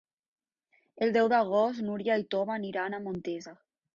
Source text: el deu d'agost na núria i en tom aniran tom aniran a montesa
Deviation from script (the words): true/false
true